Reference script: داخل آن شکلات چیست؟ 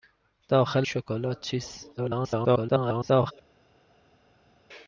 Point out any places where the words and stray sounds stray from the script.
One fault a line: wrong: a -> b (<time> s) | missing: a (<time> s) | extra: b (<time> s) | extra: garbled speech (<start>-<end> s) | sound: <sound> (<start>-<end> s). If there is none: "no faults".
missing: آن (0.9 s)
extra: garbled speech (2.0-3.3 s)